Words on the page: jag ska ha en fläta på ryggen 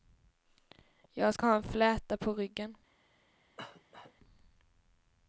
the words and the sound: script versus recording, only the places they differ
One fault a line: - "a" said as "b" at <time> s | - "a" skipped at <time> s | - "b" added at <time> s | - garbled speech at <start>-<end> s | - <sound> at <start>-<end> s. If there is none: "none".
- cough at 3.6-4.1 s